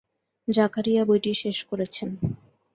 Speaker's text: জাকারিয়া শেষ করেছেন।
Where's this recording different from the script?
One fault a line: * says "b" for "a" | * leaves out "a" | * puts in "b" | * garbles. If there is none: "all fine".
* puts in "বইটি"